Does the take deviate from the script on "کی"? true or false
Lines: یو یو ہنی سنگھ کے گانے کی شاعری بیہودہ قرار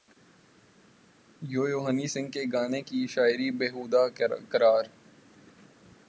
false